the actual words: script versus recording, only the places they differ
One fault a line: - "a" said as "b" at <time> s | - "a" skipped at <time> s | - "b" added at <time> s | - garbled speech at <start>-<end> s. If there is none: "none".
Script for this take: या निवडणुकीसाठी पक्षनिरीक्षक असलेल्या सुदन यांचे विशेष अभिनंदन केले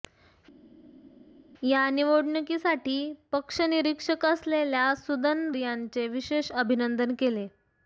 none